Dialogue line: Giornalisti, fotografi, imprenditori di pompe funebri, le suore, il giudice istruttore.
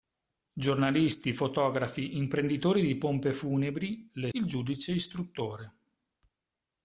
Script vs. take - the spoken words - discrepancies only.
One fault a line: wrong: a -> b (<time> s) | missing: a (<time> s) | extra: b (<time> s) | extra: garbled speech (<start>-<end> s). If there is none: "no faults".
missing: suore (4.3 s)